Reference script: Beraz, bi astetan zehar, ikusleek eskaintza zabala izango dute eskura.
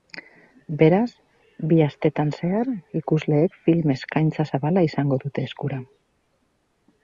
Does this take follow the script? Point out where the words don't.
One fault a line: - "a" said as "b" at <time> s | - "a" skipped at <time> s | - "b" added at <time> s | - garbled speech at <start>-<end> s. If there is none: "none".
- "film" added at 3.7 s